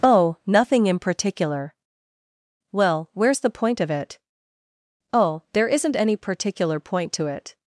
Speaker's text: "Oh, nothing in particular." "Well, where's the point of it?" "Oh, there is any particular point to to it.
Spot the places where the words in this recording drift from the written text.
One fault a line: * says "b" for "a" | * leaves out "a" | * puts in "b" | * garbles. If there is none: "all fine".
* says "isn't" for "is"
* leaves out "to"